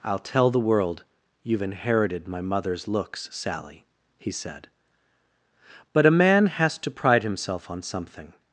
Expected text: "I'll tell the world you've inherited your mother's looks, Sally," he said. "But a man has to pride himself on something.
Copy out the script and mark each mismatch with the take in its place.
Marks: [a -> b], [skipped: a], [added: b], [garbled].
"I'll tell the world you've inherited [your -> my] mother's looks, Sally," he said. "But a man has to pride himself on something.